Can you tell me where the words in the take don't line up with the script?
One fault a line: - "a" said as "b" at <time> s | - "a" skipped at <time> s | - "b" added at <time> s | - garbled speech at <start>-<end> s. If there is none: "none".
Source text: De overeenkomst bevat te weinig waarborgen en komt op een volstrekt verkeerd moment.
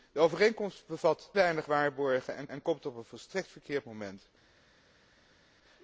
- "te" skipped at 1.3 s
- "en" added at 2.5 s